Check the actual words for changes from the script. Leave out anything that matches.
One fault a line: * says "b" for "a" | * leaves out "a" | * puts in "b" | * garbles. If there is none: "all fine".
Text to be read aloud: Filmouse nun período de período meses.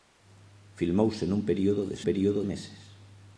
all fine